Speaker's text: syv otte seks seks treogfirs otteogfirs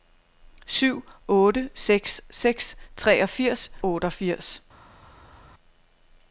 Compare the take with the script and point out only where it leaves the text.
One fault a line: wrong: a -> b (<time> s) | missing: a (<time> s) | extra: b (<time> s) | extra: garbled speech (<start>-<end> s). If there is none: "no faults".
no faults